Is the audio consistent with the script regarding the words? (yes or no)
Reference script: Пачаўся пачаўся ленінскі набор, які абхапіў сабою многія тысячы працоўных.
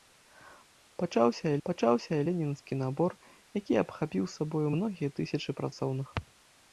yes